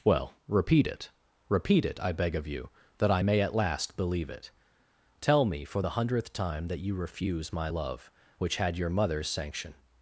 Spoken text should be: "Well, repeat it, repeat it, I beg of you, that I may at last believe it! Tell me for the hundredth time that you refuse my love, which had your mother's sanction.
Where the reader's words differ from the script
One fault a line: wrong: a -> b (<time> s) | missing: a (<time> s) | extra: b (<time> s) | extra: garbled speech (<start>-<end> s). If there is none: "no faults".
no faults